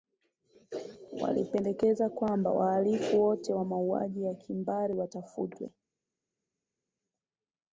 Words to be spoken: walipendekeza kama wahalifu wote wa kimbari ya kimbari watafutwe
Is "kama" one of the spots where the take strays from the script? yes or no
yes